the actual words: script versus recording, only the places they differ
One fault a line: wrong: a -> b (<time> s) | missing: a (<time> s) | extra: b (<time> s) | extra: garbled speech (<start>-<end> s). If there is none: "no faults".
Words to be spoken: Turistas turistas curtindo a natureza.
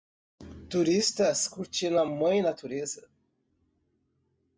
missing: turistas (1.5 s)
extra: mãe (2.0 s)